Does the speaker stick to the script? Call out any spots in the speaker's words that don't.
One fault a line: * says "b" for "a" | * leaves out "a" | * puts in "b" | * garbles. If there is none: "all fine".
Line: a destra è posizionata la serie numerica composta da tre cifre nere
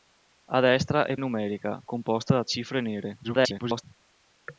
* leaves out "posizionata la serie"
* leaves out "tre"
* garbles